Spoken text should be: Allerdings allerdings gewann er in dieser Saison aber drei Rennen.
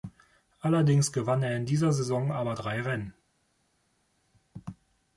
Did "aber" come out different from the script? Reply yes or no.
no